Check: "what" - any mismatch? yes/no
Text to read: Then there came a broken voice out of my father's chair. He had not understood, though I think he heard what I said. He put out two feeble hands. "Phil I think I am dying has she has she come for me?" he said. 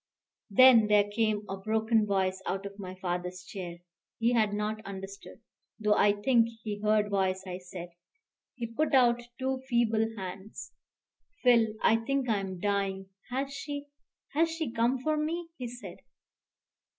yes